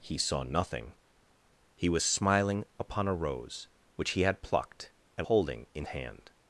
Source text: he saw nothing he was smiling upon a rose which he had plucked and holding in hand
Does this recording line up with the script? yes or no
yes